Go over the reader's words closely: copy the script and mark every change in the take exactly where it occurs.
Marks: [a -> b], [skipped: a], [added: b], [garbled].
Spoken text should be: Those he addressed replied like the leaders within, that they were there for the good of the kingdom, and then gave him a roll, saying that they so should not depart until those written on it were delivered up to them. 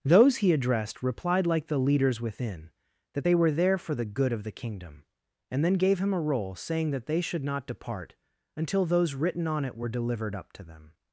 Those he addressed replied like the leaders within, that they were there for the good of the kingdom, and then gave him a roll, saying that they [skipped: so] should not depart until those written on it were delivered up to them.